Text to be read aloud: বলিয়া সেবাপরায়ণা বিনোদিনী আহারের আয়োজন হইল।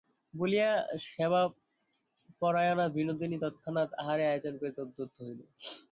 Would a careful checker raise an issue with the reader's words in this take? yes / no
yes